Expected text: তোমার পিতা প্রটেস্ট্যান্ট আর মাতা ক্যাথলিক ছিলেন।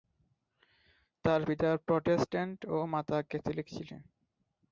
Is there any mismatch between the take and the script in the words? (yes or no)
yes